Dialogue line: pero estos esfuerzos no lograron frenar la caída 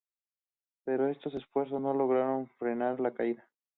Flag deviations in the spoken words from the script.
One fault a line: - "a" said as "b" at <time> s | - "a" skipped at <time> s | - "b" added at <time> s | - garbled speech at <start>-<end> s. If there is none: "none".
none